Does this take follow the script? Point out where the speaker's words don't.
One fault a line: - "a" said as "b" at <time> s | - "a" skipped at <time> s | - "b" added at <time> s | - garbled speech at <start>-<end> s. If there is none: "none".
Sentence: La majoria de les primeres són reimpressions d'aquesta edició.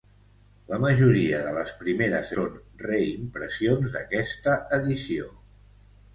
none